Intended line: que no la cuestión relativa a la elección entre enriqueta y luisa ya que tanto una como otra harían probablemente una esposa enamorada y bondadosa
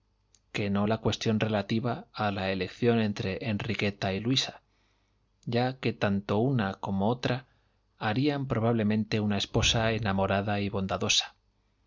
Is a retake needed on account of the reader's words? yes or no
no